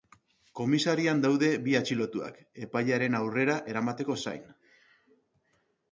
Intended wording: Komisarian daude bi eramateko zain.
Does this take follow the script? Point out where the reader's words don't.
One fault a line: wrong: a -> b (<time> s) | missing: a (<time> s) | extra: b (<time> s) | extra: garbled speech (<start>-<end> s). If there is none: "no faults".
extra: atxilotuak epailearen aurrera (1.8 s)